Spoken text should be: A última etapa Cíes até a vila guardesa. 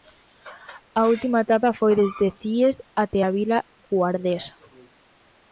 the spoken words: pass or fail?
fail